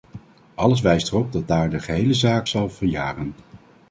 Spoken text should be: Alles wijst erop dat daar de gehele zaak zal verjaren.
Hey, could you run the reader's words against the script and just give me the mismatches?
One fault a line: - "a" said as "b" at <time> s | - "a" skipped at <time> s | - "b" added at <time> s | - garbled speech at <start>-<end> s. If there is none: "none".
none